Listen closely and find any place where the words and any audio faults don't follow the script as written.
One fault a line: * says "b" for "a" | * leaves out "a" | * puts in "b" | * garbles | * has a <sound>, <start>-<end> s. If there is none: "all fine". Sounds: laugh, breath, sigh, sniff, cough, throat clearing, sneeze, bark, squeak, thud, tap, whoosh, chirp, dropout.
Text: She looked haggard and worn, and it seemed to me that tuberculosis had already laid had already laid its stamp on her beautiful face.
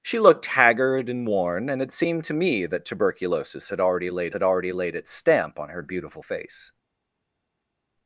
all fine